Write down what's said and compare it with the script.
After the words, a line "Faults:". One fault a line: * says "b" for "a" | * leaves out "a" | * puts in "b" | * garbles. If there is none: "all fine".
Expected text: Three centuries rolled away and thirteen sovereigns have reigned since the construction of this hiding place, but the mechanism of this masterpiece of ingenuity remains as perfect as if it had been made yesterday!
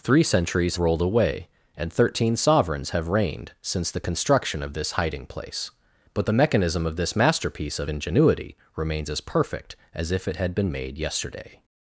Three centuries rolled away and thirteen sovereigns have reigned since the construction of this hiding place, but the mechanism of this masterpiece of ingenuity remains as perfect as if it had been made yesterday!
Faults:
all fine